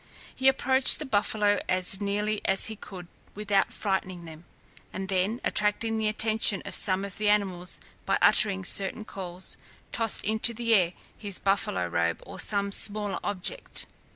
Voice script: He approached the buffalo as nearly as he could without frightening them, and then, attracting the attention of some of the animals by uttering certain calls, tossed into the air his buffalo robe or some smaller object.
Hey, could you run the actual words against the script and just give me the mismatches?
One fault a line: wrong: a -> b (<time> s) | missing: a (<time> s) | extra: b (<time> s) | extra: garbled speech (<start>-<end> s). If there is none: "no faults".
no faults